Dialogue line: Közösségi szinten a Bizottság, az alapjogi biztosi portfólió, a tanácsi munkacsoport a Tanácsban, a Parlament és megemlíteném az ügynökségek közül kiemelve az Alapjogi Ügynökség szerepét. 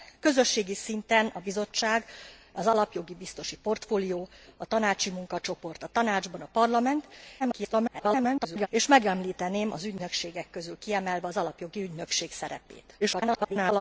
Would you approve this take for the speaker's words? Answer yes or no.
no